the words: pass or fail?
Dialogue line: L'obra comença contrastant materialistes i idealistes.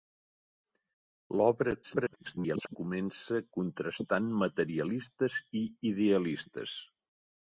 fail